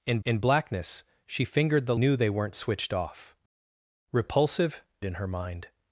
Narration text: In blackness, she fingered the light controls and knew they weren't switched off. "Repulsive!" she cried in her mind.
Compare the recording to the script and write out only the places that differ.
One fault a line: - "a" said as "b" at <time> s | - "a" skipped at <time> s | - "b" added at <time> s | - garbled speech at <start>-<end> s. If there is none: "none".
- "in" added at 0.2 s
- "light controls and" skipped at 2.0 s
- "she cried" skipped at 4.8 s